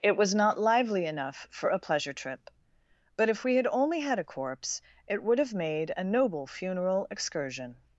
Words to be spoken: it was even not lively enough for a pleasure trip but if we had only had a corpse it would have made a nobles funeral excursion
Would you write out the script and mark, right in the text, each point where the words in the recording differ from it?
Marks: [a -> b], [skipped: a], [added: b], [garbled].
it was [skipped: even] not lively enough for a pleasure trip but if we had only had a corpse it would have made a [nobles -> noble] funeral excursion